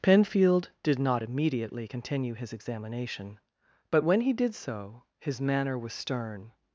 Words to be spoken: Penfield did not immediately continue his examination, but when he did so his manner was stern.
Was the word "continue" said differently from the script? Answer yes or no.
no